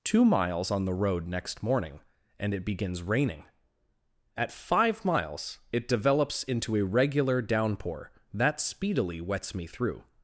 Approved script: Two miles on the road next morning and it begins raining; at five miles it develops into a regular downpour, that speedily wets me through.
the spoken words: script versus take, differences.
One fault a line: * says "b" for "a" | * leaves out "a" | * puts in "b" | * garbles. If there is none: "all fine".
all fine